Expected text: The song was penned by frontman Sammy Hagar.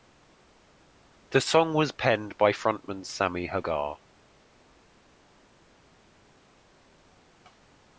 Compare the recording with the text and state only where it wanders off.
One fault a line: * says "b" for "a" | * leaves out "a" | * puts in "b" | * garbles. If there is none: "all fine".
all fine